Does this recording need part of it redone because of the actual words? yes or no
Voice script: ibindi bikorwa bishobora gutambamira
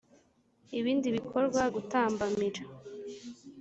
yes